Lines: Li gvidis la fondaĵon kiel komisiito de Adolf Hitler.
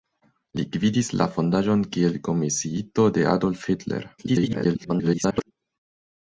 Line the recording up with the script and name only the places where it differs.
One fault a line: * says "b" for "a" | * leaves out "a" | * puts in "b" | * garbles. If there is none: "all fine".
* garbles